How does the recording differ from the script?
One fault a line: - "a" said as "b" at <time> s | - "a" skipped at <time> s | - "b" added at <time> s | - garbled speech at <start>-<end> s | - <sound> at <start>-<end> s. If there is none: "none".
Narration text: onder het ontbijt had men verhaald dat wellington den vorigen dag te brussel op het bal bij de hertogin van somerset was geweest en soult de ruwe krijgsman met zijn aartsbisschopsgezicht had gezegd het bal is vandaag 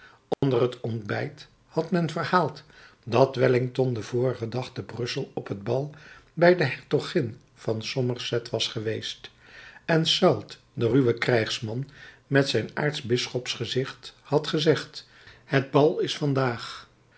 - dropout at 0.3-0.4 s